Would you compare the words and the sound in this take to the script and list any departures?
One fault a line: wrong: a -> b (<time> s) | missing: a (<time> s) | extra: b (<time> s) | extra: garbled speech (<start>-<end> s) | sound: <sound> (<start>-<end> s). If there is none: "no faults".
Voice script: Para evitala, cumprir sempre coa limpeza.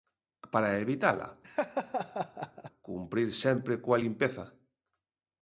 sound: laugh (1.4-2.7 s)